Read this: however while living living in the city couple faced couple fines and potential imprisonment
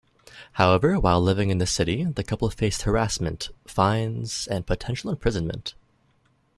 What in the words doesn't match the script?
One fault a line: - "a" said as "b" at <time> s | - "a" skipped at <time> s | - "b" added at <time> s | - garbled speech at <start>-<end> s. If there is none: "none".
- "living" skipped at 1.5 s
- "the" added at 2.0 s
- "couple" said as "harassment" at 2.8 s